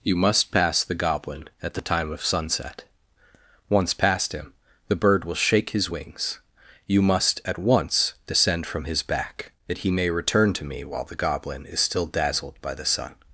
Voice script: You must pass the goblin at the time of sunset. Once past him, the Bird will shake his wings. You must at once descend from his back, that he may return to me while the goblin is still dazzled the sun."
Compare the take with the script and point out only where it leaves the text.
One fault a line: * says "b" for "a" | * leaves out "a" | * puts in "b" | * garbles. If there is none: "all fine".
* puts in "by"